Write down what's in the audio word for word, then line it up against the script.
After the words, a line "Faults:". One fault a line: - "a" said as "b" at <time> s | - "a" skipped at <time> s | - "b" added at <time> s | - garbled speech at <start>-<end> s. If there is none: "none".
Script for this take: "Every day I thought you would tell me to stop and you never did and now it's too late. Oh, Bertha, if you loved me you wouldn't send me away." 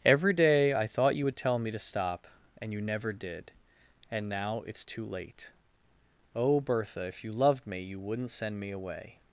"Every day I thought you would tell me to stop and you never did and now it's too late. Oh, Bertha, if you loved me you wouldn't send me away."
Faults:
none